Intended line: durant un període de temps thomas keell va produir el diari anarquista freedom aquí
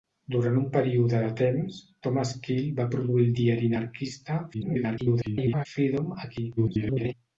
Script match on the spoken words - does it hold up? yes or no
no